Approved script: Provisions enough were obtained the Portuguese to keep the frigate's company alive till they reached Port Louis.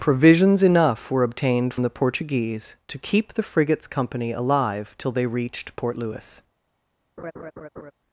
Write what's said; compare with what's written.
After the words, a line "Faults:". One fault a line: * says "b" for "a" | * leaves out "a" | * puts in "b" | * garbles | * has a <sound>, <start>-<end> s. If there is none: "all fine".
Provisions enough were obtained the Portuguese to keep the frigate's company alive till they reached Port Louis.
Faults:
* has a laugh, 7.2-7.9 s